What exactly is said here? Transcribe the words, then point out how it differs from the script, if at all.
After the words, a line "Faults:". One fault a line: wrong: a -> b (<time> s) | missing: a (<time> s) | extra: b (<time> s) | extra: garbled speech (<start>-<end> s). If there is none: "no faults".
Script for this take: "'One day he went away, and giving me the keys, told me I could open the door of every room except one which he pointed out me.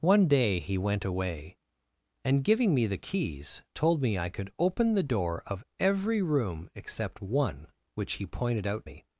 "'One day he went away, and giving me the keys, told me I could open the door of every room except one which he pointed out me.
Faults:
no faults